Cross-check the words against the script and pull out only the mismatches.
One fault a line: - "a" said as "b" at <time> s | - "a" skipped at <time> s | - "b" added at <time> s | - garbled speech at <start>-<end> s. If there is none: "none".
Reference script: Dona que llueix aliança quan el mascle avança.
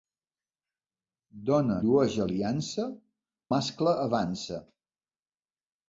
- "que" skipped at 1.8 s
- "quan el" skipped at 2.9 s